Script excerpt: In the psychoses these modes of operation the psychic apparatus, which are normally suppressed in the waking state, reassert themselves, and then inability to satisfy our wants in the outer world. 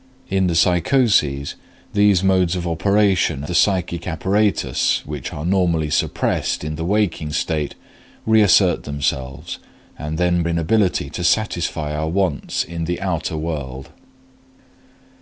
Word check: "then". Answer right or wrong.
right